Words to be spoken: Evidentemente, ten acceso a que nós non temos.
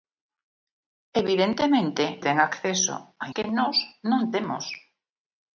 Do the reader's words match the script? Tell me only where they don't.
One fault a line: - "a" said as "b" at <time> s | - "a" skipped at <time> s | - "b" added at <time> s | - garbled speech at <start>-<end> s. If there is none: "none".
none